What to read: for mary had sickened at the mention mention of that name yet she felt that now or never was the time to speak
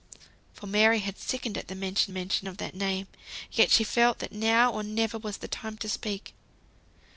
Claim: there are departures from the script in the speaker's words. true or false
false